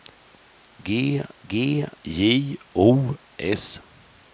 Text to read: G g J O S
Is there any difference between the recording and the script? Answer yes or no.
no